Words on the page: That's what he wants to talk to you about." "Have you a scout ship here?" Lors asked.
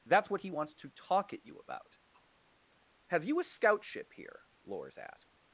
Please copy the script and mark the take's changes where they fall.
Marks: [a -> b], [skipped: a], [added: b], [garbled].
That's what he wants to talk [to -> at] you about." "Have you a scout ship here?" Lors asked.